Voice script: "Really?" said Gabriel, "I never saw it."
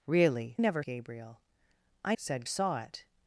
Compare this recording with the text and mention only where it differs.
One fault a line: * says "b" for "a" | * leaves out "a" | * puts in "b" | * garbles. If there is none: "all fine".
* says "never" for "said"
* says "said" for "never"